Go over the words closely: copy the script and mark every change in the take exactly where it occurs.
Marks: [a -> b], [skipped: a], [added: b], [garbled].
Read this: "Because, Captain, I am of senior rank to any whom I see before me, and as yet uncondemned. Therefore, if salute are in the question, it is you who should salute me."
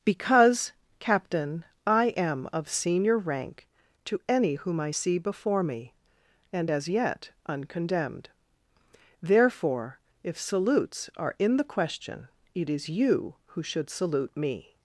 "Because, Captain, I am of senior rank to any whom I see before me, and as yet uncondemned. Therefore, if [salute -> salutes] are in the question, it is you who should salute me."